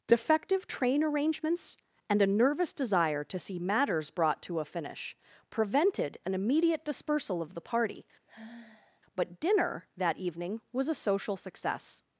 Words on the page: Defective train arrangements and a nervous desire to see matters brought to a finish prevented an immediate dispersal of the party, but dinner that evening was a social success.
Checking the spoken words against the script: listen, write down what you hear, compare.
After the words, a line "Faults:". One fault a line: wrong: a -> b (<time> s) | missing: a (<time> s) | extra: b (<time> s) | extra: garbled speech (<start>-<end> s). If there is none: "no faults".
Defective train arrangements and a nervous desire to see matters brought to a finish prevented an immediate dispersal of the party, but dinner that evening was a social success.
Faults:
no faults